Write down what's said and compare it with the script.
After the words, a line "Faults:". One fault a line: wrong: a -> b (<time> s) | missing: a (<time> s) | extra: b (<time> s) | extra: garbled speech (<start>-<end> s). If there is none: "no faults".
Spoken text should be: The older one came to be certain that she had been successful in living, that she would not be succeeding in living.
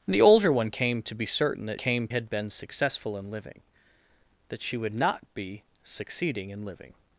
The older one came to be certain that came had been successful in living, that she would not be succeeding in living.
Faults:
wrong: she -> came (1.8 s)